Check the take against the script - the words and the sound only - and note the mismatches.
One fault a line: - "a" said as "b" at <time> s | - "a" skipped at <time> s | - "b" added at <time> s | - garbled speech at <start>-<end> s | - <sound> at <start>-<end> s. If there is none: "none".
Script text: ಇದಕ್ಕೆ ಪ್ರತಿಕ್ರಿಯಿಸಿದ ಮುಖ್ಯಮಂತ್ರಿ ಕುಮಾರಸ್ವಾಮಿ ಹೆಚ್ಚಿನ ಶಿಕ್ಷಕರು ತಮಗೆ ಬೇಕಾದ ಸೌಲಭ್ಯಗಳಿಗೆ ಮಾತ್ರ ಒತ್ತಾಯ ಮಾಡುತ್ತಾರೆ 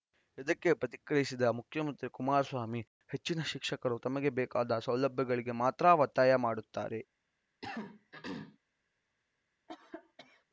- throat clearing at 7.6-8.6 s
- cough at 9.7-10.5 s